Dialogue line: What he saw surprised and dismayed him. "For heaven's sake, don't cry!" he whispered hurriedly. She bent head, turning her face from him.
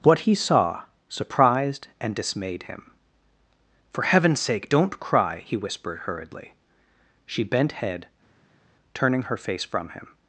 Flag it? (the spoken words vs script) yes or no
no